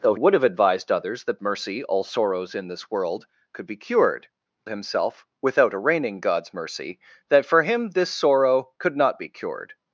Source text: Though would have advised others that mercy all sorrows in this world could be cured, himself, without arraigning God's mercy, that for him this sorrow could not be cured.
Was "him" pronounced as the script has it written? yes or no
yes